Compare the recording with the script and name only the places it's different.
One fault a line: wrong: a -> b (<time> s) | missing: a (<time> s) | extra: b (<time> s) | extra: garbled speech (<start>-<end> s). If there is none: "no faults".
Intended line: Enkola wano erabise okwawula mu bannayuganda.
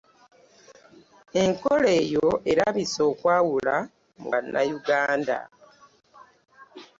wrong: wano -> eyo (2.0 s)